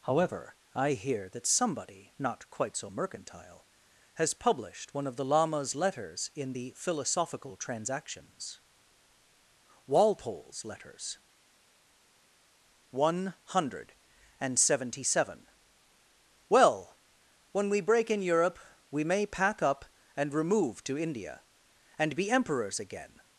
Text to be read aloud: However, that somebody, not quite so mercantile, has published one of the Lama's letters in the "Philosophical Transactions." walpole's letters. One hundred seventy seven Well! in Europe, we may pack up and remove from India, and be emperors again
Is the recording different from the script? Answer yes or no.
yes